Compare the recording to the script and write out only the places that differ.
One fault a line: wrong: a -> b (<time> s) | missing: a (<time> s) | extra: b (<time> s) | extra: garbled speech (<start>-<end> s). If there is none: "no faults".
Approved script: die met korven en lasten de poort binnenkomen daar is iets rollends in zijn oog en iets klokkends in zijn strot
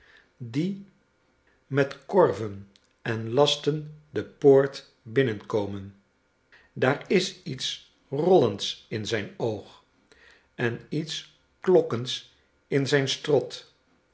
no faults